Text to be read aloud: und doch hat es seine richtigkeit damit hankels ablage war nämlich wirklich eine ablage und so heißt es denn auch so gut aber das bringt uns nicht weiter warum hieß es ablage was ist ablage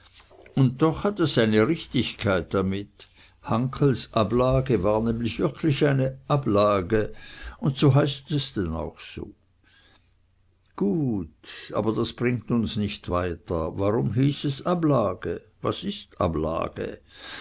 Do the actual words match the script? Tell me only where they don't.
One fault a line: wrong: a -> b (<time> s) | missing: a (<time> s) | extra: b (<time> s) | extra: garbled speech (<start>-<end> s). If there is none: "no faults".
no faults